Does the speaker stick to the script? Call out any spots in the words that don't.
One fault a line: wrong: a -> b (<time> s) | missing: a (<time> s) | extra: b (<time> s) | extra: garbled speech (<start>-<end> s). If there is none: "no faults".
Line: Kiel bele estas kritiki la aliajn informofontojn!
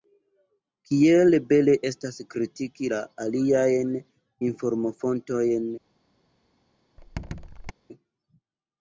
no faults